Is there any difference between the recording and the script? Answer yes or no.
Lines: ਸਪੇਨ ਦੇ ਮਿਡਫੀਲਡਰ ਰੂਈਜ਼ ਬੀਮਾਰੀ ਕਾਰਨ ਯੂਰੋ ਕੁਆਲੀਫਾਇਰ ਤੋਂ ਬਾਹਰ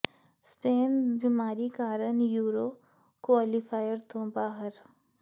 yes